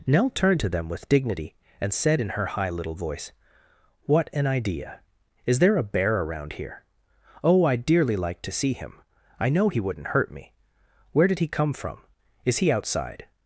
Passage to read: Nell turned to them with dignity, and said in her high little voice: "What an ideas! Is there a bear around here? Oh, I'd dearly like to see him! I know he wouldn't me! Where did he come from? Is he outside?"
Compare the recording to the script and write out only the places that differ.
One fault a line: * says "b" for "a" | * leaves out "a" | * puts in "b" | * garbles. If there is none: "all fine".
* says "idea" for "ideas"
* puts in "hurt"